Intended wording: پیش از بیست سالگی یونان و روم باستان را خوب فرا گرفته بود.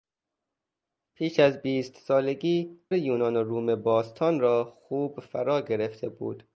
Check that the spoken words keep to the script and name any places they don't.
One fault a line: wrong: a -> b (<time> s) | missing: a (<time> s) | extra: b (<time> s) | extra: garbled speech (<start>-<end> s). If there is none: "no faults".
no faults